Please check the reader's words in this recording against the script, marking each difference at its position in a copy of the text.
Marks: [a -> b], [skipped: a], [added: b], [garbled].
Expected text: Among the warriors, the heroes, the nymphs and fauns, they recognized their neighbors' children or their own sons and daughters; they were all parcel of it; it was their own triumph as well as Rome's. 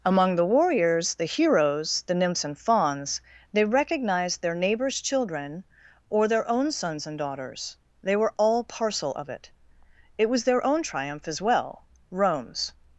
Among the warriors, the heroes, the nymphs and fauns, they recognized their neighbors' children or their own sons and daughters; they were all parcel of it; it was their own triumph as well [skipped: as] Rome's.